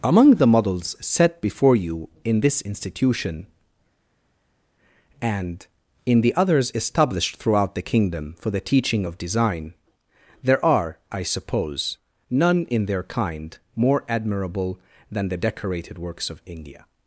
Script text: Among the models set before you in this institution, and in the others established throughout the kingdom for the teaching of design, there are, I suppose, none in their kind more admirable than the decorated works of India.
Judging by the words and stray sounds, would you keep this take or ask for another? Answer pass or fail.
pass